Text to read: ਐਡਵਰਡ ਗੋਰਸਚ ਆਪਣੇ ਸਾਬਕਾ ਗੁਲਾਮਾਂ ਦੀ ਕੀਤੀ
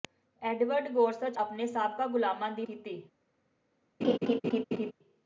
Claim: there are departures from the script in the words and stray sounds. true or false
true